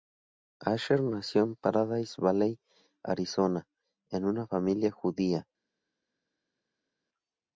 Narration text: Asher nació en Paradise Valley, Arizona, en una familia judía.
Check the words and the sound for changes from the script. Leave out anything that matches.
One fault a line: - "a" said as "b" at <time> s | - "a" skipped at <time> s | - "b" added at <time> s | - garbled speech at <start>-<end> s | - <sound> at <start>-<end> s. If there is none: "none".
none